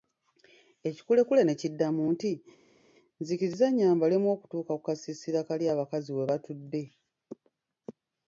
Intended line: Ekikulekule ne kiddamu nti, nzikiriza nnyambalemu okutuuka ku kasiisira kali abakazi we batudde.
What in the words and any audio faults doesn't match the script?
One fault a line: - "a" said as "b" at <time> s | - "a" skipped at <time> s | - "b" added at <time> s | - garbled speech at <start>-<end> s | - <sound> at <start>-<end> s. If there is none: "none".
none